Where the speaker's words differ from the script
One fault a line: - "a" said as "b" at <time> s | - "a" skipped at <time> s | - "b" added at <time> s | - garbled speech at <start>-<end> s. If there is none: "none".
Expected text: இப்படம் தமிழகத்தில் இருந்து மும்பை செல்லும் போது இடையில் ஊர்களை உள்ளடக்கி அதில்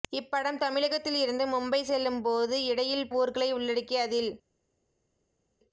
none